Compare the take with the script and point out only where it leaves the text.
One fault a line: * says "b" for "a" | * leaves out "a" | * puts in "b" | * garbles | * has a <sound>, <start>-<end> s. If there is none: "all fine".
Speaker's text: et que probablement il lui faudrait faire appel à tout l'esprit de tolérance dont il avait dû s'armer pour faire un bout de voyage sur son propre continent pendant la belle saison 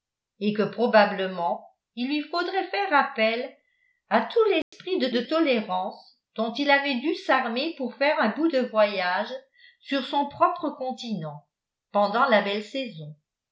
* has a dropout, 4.6-4.7 s
* puts in "de"